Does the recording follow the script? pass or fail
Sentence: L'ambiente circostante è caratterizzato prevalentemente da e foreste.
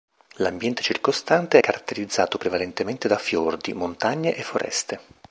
fail